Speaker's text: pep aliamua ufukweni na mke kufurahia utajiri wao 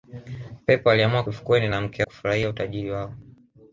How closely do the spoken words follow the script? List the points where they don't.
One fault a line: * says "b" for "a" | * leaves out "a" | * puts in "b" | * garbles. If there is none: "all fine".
all fine